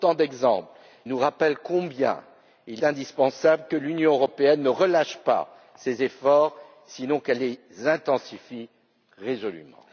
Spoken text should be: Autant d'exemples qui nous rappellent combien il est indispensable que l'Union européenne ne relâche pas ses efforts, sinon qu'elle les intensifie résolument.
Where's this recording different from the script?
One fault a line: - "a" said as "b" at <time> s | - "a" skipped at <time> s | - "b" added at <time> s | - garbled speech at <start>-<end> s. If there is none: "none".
- "qui" skipped at 0.7 s
- "est" skipped at 2.8 s